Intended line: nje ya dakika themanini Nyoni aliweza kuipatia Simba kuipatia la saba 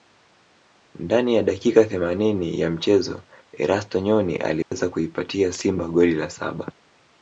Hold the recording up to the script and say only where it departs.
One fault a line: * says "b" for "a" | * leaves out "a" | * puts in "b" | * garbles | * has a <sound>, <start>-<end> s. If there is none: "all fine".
* says "ndani" for "nje"
* puts in "ya mchezo Erasto"
* has a dropout, 4.6-4.7 s
* says "goli" for "kuipatia"